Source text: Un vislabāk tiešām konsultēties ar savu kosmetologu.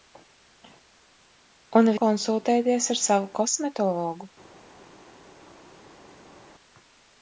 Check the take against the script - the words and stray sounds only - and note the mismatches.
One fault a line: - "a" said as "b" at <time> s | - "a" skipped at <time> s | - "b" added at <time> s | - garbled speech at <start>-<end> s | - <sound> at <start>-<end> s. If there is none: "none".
- "vislabāk tiešām" skipped at 1.9 s